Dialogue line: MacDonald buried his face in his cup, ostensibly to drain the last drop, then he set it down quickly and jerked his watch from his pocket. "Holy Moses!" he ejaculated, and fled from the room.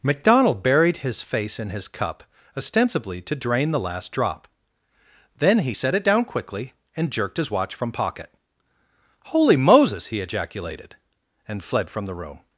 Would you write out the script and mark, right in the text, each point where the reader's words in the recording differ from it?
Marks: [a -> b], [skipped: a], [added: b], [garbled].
MacDonald buried his face in his cup, ostensibly to drain the last drop, then he set it down quickly and jerked his watch from [skipped: his] pocket. "Holy Moses!" he ejaculated, and fled from the room.